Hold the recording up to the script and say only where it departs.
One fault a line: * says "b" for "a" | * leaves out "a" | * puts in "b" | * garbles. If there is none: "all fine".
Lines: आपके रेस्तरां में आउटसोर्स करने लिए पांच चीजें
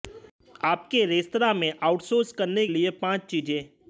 all fine